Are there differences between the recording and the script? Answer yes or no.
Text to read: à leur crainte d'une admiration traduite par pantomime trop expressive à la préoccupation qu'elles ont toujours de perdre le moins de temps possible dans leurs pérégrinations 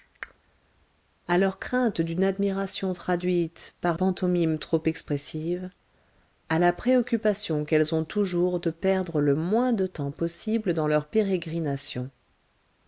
no